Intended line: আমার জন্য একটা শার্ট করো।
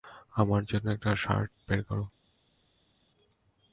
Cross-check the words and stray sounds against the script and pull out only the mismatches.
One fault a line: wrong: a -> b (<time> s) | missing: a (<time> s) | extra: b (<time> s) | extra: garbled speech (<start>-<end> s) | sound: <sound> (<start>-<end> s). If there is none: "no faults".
extra: বের (1.7 s)